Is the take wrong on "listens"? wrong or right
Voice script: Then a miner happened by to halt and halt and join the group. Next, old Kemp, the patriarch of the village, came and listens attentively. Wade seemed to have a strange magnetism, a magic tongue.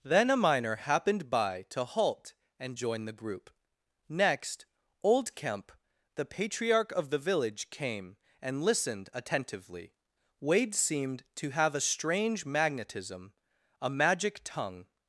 wrong